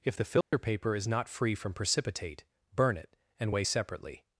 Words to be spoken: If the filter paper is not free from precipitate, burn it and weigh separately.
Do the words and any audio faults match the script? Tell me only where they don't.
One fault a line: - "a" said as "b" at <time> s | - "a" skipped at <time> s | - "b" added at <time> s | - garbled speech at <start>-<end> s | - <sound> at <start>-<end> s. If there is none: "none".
- dropout at 0.4-0.5 s